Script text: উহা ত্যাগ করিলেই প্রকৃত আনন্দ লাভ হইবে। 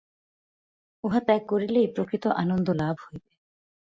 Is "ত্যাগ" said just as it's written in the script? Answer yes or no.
yes